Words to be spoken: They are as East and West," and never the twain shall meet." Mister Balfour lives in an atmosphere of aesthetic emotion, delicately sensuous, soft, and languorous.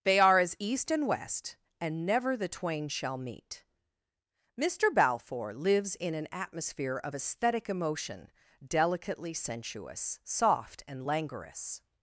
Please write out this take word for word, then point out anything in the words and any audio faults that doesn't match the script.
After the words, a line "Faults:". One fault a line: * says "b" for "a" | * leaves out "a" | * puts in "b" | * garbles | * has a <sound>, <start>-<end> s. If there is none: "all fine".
They are as East and West," and never the twain shall meet." Mister Balfour lives in an atmosphere of aesthetic emotion, delicately sensuous, soft, and languorous.
Faults:
all fine